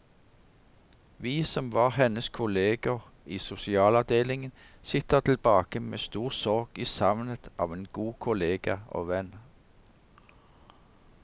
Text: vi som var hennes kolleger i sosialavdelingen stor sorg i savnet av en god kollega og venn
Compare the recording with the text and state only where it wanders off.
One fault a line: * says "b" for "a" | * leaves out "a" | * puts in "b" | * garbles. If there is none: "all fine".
* puts in "sitter tilbake med"